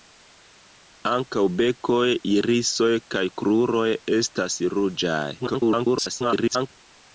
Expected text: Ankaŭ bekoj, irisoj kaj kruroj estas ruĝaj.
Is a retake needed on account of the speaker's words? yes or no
yes